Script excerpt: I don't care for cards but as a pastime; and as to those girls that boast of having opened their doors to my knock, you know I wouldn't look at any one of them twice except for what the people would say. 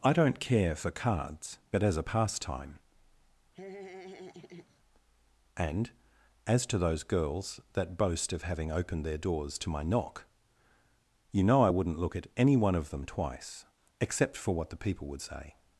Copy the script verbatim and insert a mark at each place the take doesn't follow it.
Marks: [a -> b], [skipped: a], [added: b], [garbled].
I don't care for cards but as a pastime; and as to those girls that boast of having opened their doors to my knock, you know I wouldn't look at any one of them twice except for what the people would say.